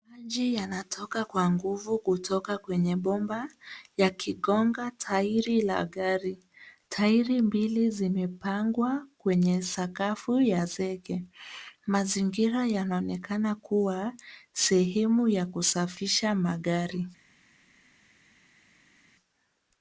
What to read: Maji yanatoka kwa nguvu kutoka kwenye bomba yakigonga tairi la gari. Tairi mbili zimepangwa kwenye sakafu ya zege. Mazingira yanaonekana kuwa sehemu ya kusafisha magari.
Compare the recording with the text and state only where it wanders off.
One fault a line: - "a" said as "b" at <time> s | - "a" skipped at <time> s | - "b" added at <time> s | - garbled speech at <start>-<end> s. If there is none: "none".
none